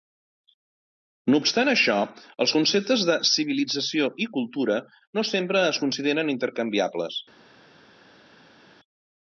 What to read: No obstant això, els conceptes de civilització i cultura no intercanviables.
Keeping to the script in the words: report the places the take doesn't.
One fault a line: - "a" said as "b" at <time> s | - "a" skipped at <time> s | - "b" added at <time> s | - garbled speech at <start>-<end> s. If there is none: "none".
- "sempre es consideren" added at 5.3 s